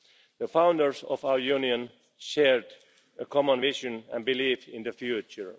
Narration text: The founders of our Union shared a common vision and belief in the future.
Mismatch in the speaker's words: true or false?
false